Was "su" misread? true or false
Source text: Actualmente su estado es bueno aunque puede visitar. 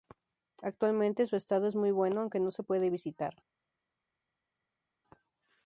false